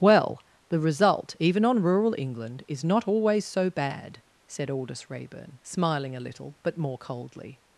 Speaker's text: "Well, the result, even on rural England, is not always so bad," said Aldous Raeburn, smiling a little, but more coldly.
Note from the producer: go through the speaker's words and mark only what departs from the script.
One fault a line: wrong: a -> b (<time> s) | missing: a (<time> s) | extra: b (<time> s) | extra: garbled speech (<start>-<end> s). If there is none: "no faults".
no faults